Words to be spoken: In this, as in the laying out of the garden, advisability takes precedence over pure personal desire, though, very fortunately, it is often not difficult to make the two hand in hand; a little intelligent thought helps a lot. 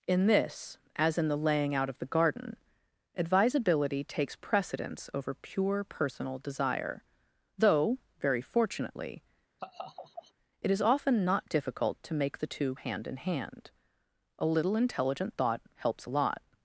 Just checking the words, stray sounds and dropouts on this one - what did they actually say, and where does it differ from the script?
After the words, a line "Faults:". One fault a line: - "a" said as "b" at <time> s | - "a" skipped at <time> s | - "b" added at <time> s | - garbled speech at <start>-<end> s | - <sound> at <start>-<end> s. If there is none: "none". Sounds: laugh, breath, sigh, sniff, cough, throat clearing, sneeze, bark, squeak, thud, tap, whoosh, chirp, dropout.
In this, as in the laying out of the garden, advisability takes precedence over pure personal desire, though, very fortunately, it is often not difficult to make the two hand in hand; a little intelligent thought helps a lot.
Faults:
- laugh at 9.6-10.3 s